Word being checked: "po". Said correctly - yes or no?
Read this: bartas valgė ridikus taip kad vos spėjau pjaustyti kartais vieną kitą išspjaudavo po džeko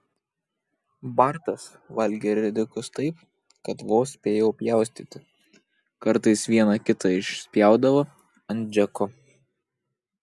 no